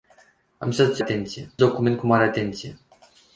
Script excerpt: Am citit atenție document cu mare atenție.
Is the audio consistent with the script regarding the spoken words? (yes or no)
yes